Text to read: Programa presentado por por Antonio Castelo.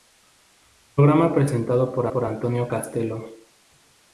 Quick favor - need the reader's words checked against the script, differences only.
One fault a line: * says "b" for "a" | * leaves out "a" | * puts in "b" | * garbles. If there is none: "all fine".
all fine